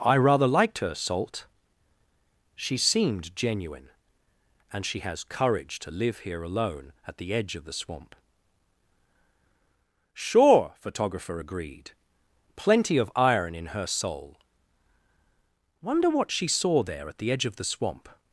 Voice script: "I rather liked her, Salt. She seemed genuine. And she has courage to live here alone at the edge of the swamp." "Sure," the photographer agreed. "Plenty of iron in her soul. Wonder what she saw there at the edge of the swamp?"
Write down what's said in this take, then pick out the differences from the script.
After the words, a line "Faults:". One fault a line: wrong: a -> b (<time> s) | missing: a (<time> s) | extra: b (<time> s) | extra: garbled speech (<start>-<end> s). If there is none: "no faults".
"I rather liked her, Salt. She seemed genuine. And she has courage to live here alone at the edge of the swamp." "Sure," photographer agreed. "Plenty of iron in her soul. Wonder what she saw there at the edge of the swamp?"
Faults:
missing: the (10.7 s)